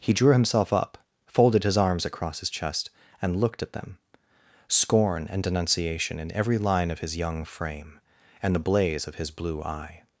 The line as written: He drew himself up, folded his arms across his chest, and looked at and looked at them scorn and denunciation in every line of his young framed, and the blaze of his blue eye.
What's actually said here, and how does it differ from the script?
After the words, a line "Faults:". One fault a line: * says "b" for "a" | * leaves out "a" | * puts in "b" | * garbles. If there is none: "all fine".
He drew himself up, folded his arms across his chest, and looked at them scorn and denunciation in every line of his young frame, and the blaze of his blue eye.
Faults:
* leaves out "and looked at"
* says "frame" for "framed"